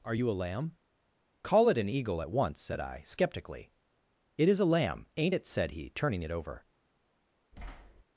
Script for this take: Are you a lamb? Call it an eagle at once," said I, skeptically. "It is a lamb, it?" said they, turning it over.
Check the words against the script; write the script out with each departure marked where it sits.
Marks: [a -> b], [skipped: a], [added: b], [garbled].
Are you a lamb? Call it an eagle at once," said I, skeptically. "It is a lamb, [added: ain't] it?" said [they, -> he] turning it over.